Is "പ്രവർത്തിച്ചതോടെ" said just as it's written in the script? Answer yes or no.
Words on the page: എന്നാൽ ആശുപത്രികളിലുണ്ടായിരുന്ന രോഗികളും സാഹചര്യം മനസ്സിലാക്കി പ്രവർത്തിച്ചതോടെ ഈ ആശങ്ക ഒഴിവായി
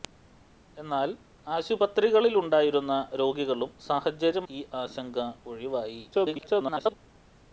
no